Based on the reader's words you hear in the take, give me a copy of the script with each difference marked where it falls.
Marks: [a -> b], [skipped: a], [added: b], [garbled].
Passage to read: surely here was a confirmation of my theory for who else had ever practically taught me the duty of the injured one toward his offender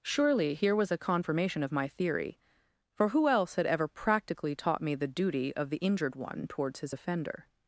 surely here was a confirmation of my theory for who else had ever practically taught me the duty of the injured one [toward -> towards] his offender